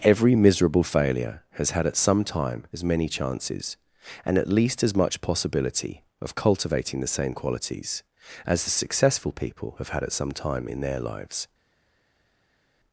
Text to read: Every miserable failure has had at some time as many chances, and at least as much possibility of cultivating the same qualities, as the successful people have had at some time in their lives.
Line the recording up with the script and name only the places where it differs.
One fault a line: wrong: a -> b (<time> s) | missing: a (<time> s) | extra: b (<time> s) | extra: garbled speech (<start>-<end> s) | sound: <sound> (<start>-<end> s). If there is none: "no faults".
no faults